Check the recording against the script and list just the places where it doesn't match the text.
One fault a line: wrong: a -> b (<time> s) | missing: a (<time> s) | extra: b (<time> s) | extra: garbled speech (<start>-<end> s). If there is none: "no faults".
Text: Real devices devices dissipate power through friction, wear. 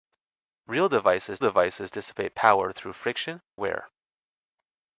no faults